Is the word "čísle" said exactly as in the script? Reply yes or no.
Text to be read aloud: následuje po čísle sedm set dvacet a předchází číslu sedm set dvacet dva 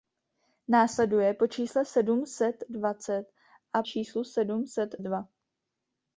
yes